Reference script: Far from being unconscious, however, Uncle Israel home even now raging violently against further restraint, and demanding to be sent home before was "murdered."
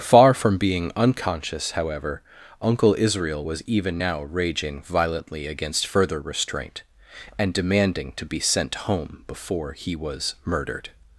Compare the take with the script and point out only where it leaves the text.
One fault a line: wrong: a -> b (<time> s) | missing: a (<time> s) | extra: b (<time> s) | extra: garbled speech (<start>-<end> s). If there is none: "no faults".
wrong: home -> was (3.4 s)
extra: he (9.7 s)